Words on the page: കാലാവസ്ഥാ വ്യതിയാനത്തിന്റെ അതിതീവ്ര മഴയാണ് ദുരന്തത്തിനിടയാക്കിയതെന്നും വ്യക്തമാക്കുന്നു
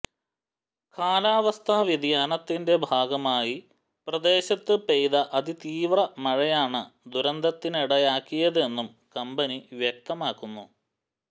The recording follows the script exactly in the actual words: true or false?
false